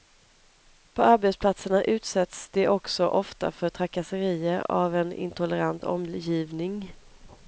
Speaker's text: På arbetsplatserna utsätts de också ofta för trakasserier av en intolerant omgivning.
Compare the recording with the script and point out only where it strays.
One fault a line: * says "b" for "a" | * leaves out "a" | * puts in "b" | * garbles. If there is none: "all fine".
all fine